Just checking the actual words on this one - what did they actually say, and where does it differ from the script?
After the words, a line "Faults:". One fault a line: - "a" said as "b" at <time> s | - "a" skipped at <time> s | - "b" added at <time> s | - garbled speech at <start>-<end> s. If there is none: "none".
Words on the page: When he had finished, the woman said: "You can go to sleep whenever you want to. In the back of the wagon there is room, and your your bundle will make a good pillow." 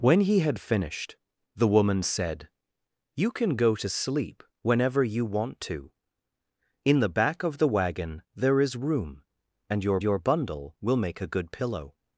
When he had finished, the woman said: "You can go to sleep whenever you want to. In the back of the wagon there is room, and your your bundle will make a good pillow."
Faults:
none